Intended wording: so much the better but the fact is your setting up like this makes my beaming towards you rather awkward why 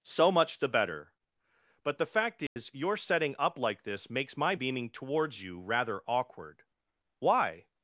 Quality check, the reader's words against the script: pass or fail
pass